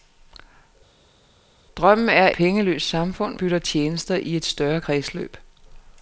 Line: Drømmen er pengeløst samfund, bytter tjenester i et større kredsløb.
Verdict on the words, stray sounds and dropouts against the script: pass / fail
pass